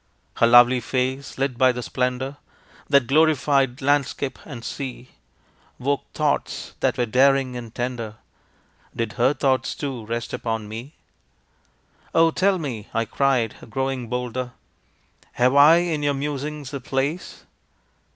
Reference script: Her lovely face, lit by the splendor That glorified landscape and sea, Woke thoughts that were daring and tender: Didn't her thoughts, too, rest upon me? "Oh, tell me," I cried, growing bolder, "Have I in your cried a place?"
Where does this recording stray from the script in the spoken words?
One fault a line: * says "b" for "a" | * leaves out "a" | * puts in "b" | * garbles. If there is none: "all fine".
* says "Did" for "Didn't"
* says "musings" for "cried"